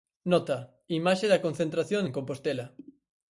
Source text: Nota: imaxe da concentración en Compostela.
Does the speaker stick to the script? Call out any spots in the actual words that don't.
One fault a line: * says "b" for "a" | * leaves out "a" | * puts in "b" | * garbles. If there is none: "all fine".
all fine